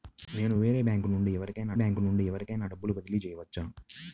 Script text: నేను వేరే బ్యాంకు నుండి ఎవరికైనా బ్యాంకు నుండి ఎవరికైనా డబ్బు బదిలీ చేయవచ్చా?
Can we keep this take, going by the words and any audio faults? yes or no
yes